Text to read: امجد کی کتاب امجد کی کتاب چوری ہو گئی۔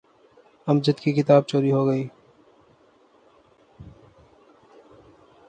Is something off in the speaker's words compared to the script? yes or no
yes